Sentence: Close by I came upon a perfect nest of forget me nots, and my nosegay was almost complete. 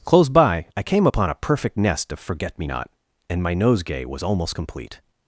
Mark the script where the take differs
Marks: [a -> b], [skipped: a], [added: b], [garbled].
Close by I came upon a perfect nest of forget me [nots, -> not] and my nosegay was almost complete.